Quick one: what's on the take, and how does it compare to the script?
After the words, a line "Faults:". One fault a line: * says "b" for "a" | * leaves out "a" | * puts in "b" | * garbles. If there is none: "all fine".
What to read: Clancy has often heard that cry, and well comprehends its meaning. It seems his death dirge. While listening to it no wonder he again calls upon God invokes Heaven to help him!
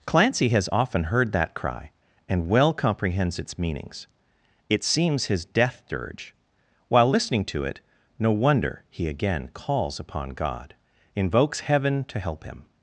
Clancy has often heard that cry, and well comprehends its meanings. It seems his death dirge. While listening to it no wonder he again calls upon God invokes Heaven to help him!
Faults:
* says "meanings" for "meaning"